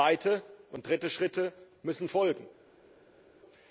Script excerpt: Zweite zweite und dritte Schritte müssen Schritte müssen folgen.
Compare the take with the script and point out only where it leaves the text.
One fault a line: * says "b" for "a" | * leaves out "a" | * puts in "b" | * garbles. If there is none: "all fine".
* leaves out "zweite"
* leaves out "Schritte müssen"